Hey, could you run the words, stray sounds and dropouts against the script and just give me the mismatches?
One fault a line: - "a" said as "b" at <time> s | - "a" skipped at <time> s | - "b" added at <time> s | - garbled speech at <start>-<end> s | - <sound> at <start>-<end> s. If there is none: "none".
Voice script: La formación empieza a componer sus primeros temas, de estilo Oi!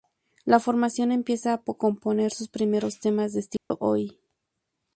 - dropout at 3.6-3.7 s